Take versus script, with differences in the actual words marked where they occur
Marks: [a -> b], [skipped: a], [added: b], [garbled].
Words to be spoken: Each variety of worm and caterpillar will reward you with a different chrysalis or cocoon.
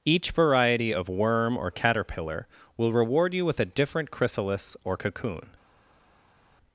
Each variety of worm [and -> or] caterpillar will reward you with a different chrysalis or cocoon.